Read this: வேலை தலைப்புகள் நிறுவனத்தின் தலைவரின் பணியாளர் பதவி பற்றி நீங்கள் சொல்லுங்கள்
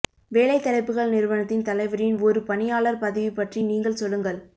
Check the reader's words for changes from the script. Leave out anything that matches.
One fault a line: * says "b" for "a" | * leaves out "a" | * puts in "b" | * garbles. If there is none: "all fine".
* puts in "ஒரு"